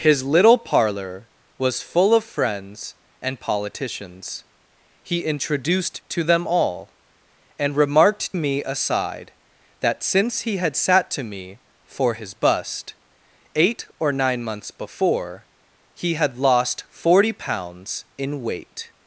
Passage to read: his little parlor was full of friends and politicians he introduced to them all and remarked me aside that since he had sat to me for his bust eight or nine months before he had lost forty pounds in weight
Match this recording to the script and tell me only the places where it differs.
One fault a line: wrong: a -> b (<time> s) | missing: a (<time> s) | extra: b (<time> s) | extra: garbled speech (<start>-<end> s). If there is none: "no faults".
no faults